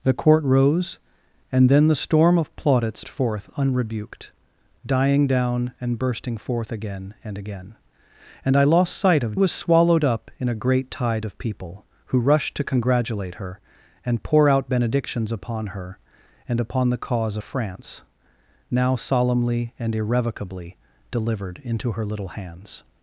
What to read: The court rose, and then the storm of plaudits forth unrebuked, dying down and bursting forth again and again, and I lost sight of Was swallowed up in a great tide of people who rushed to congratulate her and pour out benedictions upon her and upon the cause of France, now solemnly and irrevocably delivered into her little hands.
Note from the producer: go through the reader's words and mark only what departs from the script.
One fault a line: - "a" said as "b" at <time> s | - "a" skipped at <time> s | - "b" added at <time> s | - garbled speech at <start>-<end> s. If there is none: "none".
none